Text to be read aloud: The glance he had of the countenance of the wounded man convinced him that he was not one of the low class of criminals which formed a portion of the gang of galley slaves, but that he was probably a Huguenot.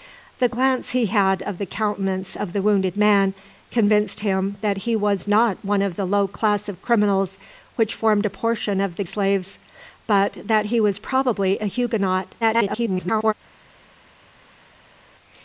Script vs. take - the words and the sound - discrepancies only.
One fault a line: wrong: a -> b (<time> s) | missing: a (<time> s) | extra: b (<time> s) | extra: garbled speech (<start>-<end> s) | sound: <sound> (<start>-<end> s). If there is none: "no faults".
missing: gang of galley (9.0 s)
extra: garbled speech (12.4-13.3 s)